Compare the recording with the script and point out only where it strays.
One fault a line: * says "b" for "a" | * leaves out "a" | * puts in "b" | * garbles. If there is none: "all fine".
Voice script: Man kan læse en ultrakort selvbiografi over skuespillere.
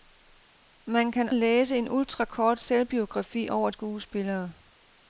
all fine